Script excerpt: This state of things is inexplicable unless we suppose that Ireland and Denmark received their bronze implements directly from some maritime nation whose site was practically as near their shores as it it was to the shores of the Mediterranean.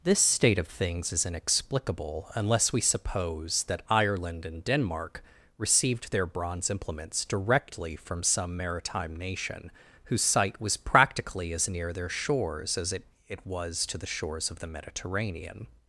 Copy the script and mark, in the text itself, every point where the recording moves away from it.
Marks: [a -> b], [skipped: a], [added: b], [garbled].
This state of things is inexplicable unless we suppose that Ireland and Denmark received their bronze implements directly from some maritime nation whose site was practically as near their shores as it it was to the shores of the Mediterranean.